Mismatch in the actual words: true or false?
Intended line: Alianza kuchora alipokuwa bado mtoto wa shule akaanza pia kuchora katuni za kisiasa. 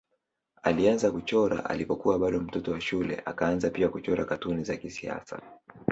false